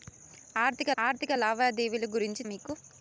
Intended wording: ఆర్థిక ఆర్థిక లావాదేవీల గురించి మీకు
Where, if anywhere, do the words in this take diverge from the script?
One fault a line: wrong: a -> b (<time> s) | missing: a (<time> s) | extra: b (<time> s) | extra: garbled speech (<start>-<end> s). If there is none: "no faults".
no faults